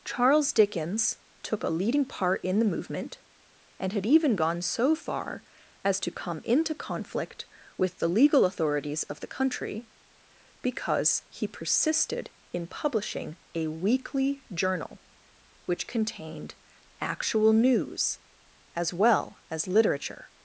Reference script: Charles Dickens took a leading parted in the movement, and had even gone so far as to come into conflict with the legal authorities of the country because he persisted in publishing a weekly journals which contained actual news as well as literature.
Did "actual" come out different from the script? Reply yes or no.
no